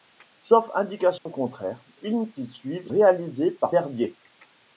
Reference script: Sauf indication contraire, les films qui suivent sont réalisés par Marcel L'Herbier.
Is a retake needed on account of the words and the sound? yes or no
yes